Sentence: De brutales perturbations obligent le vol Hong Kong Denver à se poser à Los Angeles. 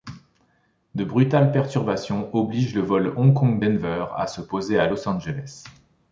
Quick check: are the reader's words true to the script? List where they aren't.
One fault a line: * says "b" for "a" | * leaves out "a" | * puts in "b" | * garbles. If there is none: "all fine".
all fine